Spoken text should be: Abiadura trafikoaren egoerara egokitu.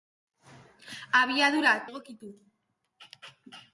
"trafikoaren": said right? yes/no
no